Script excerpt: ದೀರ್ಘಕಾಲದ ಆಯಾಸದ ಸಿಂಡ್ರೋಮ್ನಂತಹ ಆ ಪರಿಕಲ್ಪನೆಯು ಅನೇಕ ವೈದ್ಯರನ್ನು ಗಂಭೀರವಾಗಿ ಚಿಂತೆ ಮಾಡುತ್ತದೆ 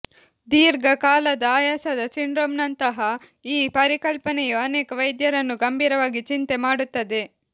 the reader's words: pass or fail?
fail